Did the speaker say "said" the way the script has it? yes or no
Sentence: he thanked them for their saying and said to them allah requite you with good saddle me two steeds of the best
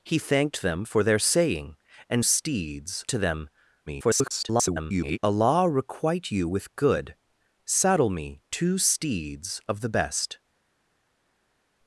no